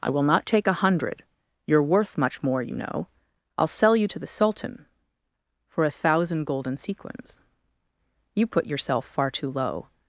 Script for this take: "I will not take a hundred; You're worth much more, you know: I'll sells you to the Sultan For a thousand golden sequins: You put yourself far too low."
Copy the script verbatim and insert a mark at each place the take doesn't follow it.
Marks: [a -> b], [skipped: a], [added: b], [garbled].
"I will not take a hundred; You're worth much more, you know: I'll [sells -> sell] you to the Sultan For a thousand golden sequins: You put yourself far too low."